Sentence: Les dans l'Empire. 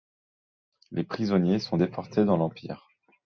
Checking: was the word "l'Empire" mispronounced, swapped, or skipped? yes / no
no